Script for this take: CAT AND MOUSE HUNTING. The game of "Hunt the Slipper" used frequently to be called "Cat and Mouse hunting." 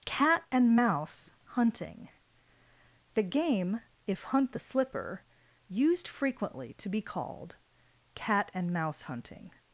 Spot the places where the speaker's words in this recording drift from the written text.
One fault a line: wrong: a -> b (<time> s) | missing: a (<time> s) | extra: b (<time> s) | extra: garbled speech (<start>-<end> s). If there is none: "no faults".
wrong: of -> if (4.1 s)